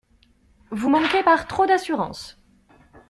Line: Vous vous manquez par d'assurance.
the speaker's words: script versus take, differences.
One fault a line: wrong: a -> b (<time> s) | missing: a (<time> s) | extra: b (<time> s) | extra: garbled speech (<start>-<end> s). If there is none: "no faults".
missing: vous (0.9 s)
extra: trop (1.5 s)